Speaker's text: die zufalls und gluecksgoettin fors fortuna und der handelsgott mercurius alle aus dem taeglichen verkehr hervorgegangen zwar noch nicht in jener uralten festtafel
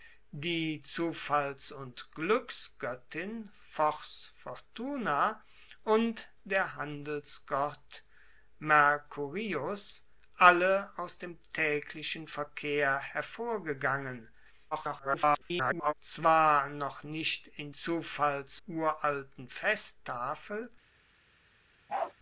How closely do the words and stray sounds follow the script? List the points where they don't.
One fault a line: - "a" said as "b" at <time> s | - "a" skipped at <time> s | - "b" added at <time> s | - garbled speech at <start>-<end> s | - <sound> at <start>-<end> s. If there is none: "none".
- garbled speech at 14.7-15.9 s
- "jener" said as "zufalls" at 17.7 s
- bark at 21.9-22.1 s